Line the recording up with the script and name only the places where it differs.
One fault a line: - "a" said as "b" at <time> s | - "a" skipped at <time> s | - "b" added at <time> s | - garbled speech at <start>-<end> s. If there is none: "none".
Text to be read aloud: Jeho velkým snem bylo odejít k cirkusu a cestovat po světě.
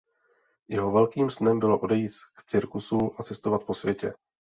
none